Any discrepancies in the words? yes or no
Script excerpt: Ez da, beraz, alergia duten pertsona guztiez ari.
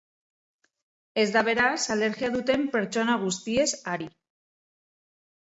no